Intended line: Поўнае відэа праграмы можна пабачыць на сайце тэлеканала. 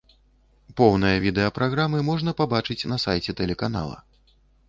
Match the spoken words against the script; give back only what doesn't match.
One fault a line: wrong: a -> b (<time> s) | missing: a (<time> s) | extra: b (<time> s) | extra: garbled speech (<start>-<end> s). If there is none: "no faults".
no faults